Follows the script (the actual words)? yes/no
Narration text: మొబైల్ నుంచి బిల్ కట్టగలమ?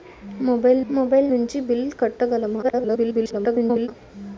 no